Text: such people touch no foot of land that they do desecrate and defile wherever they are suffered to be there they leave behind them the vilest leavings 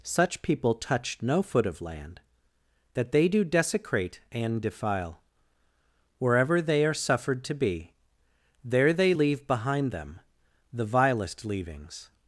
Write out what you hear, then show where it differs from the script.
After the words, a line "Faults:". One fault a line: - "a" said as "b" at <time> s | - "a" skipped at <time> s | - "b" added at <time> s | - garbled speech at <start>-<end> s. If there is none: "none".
such people touch no foot of land that they do desecrate and defile wherever they are suffered to be there they leave behind them the vilest leavings
Faults:
none